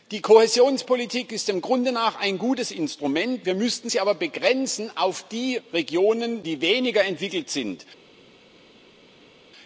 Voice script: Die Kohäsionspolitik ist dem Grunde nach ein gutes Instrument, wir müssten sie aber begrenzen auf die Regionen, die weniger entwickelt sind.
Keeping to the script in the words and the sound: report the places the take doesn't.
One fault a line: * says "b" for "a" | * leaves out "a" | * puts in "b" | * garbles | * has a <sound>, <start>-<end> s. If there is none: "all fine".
all fine